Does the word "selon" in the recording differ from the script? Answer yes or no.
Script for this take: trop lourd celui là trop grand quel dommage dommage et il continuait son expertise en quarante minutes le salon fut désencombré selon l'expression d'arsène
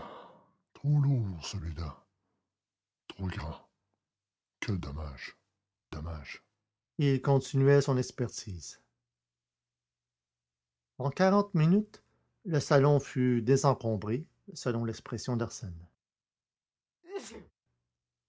no